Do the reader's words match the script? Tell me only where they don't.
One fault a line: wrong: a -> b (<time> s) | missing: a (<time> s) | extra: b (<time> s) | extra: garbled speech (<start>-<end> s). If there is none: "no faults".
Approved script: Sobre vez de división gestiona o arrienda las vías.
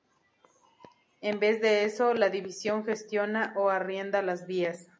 wrong: Sobre -> En (1.2 s)
extra: eso la (1.8 s)